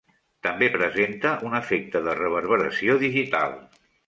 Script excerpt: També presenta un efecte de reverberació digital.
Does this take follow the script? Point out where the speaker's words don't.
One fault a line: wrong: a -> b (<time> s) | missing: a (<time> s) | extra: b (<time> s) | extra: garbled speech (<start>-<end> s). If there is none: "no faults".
no faults